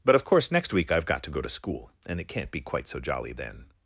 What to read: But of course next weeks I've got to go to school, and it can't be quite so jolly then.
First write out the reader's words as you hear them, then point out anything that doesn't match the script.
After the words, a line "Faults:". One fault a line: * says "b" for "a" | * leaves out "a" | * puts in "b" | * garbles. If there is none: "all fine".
But of course next week I've got to go to school, and it can't be quite so jolly then.
Faults:
* says "week" for "weeks"